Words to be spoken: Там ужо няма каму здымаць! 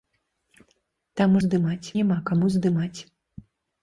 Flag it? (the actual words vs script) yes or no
yes